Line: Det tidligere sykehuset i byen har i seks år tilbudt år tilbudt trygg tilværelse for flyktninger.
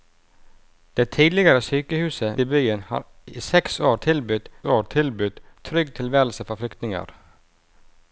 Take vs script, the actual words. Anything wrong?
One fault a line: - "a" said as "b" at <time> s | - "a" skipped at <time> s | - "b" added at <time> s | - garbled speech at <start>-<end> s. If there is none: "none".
none